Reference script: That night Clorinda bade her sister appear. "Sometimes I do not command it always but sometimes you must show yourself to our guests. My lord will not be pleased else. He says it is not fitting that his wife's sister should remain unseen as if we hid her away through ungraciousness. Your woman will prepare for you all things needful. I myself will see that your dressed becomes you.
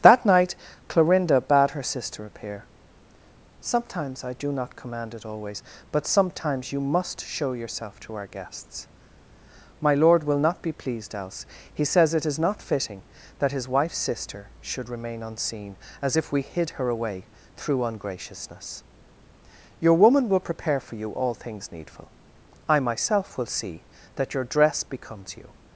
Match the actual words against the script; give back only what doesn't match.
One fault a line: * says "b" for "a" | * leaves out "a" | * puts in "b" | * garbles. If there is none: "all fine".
* says "dress" for "dressed"